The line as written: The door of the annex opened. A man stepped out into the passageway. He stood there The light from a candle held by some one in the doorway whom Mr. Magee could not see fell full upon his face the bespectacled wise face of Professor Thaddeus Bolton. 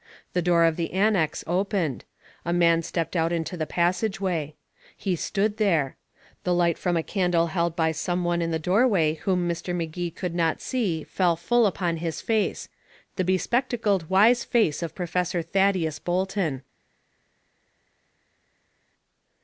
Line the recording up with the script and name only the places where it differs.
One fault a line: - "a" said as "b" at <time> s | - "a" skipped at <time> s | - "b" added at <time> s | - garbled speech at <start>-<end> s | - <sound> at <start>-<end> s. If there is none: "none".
none